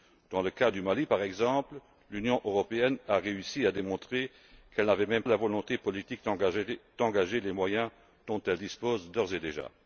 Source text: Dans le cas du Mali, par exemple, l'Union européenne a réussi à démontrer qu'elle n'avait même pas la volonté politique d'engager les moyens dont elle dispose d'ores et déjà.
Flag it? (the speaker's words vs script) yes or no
yes